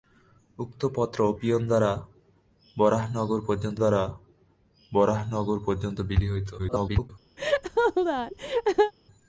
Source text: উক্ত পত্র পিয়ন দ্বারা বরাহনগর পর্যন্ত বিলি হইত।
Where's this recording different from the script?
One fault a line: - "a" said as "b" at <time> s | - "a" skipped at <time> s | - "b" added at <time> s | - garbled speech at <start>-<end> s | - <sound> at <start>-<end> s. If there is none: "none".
- "দ্বারা বরাহনগর পর্যন্ত" added at 3.8 s
- garbled speech at 6.6-7.1 s
- laugh at 7.4-8.9 s